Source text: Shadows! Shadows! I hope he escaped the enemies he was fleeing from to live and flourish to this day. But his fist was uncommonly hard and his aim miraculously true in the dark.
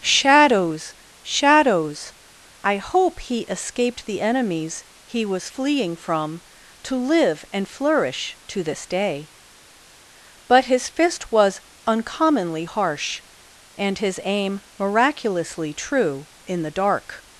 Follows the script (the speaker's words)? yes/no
no